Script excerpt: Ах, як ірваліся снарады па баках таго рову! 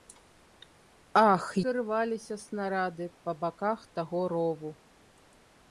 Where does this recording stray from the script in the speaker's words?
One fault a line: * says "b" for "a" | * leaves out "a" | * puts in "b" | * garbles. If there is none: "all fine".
* leaves out "як"